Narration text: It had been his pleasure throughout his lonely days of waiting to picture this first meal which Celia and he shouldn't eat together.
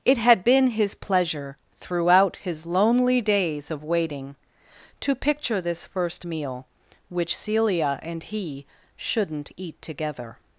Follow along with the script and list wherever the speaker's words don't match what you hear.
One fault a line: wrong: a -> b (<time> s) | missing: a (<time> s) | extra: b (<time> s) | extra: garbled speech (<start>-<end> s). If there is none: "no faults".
no faults